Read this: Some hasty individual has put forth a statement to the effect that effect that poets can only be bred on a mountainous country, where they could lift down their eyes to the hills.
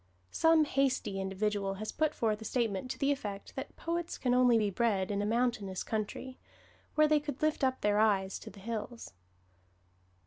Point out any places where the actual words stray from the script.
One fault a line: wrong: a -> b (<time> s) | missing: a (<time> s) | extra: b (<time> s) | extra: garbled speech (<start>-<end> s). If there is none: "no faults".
missing: effect that (3.8 s)
wrong: on -> in (5.1 s)
wrong: down -> up (7.6 s)